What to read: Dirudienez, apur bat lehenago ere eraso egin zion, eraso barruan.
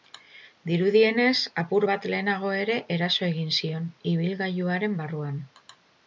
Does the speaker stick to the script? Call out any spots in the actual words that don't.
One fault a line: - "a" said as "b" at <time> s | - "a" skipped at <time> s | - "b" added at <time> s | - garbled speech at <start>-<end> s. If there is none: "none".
- "eraso" said as "ibilgailuaren" at 4.1 s